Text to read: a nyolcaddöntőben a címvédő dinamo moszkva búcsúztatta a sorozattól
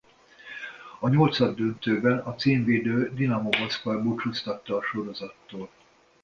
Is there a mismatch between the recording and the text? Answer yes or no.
no